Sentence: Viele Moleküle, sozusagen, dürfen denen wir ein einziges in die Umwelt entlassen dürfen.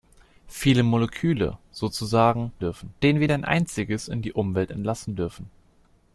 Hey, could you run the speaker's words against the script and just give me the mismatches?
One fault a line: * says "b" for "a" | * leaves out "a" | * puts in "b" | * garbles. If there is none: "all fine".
all fine